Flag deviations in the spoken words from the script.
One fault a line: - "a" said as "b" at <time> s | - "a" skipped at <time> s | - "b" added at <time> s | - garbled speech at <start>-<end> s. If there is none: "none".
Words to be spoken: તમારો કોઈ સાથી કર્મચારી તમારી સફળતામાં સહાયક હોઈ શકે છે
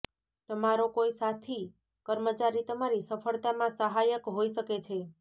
none